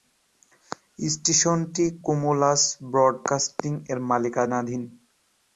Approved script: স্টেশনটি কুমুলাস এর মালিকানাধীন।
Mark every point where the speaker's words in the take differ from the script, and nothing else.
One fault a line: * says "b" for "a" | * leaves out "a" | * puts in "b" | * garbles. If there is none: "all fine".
* puts in "ব্রডকাস্টিং"